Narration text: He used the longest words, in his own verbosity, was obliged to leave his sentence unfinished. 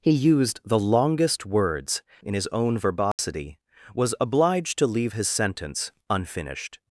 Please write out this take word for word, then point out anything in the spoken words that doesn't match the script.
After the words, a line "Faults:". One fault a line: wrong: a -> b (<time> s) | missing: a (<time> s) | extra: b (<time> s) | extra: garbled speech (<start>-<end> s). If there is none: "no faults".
He used the longest words, in his own verbosity, was obliged to leave his sentence unfinished.
Faults:
no faults